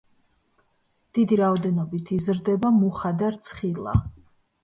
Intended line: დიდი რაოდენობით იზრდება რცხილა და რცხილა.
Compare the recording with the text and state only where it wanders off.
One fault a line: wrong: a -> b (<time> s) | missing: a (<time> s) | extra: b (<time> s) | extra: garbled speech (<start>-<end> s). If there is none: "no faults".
wrong: რცხილა -> მუხა (2.8 s)